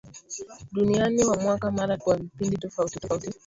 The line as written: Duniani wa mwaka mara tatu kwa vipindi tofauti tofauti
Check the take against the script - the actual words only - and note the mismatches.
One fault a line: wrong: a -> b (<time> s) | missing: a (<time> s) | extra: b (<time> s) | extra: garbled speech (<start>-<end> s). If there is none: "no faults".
missing: tatu (2.0 s)